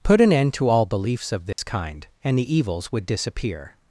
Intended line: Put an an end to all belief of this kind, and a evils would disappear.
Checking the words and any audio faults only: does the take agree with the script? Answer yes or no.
no